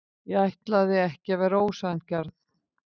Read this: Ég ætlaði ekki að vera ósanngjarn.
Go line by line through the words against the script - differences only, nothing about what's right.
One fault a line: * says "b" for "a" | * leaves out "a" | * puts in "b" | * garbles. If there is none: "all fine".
all fine